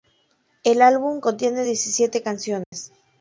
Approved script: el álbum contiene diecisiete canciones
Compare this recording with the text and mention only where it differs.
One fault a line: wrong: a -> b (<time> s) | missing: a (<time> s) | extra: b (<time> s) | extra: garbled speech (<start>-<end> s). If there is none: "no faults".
no faults